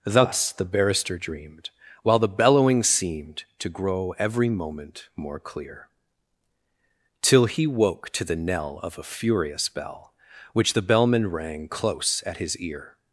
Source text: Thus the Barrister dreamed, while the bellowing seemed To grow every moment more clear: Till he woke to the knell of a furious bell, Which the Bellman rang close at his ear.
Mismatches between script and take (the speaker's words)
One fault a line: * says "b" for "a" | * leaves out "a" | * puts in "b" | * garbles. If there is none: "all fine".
all fine